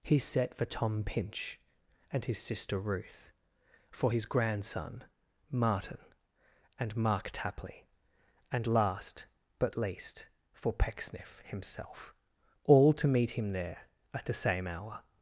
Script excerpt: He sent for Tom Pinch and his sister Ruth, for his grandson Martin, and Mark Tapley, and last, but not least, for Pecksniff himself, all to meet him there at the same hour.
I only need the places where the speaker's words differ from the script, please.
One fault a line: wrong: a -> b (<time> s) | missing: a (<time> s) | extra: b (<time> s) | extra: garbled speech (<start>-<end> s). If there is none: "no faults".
wrong: sent -> set (0.2 s)
missing: not (9.8 s)